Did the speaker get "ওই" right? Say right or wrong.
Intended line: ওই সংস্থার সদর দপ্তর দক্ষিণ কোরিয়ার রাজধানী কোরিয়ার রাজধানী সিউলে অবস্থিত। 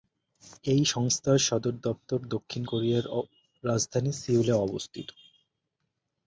wrong